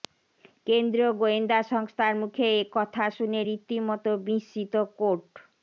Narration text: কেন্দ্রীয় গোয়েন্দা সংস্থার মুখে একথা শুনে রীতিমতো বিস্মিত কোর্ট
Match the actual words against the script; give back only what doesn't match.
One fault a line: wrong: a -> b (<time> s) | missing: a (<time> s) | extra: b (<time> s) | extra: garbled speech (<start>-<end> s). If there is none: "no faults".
no faults